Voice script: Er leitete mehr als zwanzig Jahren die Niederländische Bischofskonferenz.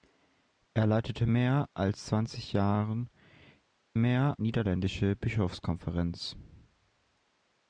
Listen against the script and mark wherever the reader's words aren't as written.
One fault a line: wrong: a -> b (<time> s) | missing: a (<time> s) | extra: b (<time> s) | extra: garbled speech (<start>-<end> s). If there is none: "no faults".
wrong: die -> mehr (3.9 s)